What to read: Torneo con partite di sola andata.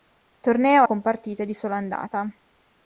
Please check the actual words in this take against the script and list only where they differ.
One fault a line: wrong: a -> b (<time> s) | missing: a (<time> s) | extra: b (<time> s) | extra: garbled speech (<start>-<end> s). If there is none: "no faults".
no faults